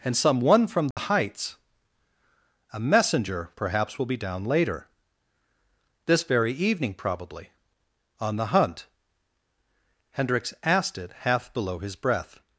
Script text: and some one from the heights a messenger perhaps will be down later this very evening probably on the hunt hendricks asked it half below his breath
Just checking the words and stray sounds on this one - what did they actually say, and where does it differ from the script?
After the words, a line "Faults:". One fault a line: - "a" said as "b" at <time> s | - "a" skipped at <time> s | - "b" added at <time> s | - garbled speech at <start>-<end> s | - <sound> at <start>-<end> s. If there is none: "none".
and some one from the heights a messenger perhaps will be down later this very evening probably on the hunt hendricks asked it half below his breath
Faults:
- dropout at 0.9-1.0 s